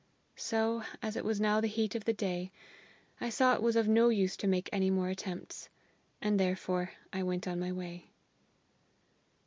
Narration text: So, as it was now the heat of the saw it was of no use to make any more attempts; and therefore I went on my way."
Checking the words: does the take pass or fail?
fail